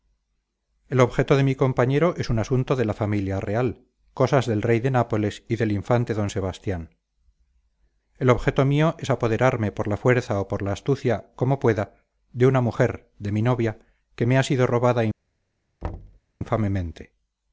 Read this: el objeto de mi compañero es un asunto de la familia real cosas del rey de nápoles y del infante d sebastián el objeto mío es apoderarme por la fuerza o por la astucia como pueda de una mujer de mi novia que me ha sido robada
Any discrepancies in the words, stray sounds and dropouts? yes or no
yes